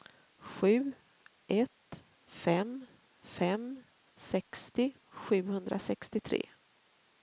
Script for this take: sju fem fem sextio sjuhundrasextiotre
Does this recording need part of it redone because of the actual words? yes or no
yes